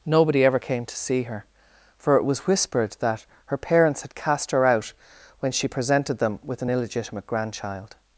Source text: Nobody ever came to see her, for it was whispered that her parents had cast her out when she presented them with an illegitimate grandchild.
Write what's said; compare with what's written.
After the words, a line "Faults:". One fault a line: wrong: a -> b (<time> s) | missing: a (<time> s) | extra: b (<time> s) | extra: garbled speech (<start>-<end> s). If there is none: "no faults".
Nobody ever came to see her, for it was whispered that her parents had cast her out when she presented them with an illegitimate grandchild.
Faults:
no faults